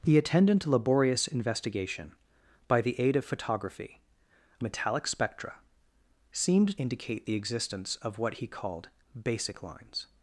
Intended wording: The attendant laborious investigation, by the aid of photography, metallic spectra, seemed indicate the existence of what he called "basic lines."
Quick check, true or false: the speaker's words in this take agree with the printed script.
true